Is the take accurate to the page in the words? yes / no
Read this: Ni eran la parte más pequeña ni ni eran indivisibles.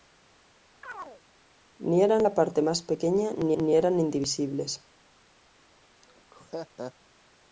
yes